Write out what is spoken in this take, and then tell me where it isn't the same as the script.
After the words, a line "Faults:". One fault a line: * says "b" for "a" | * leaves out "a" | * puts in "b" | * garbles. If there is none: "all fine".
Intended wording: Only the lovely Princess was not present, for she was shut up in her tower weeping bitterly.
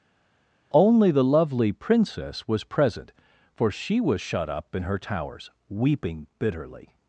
Only the lovely Princess was present, for she was shut up in her towers weeping bitterly.
Faults:
* leaves out "not"
* says "towers" for "tower"